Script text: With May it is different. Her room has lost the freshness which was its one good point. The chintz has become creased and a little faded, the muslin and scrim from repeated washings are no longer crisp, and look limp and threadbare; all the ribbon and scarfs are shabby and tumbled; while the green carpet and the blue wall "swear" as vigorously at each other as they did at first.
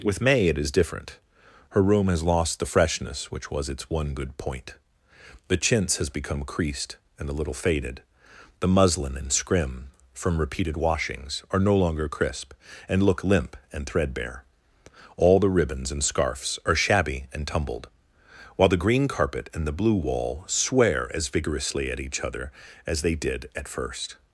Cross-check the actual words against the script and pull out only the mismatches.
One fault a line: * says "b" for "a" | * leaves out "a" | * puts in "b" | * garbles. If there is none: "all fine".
* says "ribbons" for "ribbon"